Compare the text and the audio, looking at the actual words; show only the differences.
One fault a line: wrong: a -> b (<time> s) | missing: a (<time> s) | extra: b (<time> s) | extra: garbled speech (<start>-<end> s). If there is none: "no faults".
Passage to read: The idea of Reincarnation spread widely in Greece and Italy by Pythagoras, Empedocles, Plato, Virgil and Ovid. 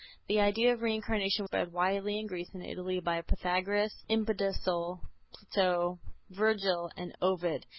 no faults